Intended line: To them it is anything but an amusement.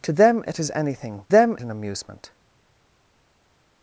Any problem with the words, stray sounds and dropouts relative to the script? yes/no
yes